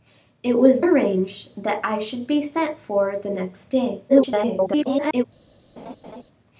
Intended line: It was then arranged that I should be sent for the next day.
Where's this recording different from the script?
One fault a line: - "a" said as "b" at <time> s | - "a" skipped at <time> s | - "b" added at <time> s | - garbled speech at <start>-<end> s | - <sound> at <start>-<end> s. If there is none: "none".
- "then" skipped at 0.8 s
- garbled speech at 4.1-5.2 s
- laugh at 5.8-6.2 s